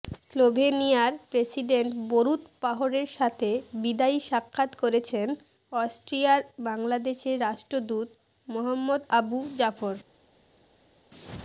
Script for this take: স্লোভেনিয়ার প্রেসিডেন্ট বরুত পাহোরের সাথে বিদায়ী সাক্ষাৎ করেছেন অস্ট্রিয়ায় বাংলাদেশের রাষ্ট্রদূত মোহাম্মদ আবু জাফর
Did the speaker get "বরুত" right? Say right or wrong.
right